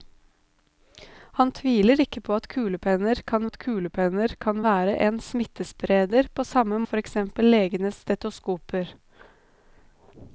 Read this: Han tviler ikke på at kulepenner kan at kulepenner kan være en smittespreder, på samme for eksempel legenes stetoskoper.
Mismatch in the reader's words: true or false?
false